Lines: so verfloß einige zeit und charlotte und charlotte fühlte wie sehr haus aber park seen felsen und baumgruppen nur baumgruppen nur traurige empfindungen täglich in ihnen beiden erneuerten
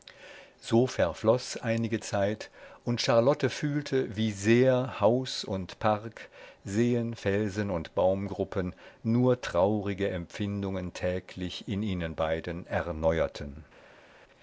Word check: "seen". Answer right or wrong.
right